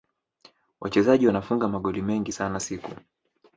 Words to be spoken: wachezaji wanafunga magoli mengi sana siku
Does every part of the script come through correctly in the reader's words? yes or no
yes